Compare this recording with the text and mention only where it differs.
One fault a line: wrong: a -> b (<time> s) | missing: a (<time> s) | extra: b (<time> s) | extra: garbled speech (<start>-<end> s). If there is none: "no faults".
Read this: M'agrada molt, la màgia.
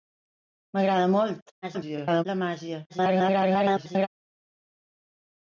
extra: garbled speech (1.6-2.2 s)
extra: garbled speech (2.9-4.1 s)